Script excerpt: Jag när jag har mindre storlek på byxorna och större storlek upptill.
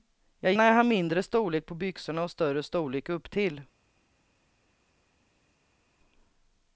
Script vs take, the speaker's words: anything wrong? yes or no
no